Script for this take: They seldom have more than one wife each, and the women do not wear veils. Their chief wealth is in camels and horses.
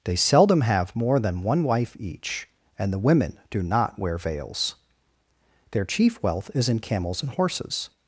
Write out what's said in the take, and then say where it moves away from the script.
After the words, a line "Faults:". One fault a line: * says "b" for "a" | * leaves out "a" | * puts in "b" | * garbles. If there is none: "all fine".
They seldom have more than one wife each, and the women do not wear veils. Their chief wealth is in camels and horses.
Faults:
all fine